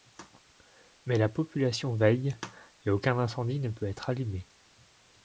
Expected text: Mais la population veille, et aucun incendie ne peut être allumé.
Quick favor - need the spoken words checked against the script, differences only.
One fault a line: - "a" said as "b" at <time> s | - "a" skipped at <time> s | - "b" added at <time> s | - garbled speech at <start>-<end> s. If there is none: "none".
none